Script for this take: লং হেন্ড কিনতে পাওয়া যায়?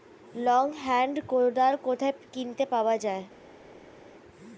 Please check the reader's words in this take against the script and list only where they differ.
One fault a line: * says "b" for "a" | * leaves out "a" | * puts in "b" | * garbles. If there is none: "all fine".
* puts in "কোদাল কোথায়"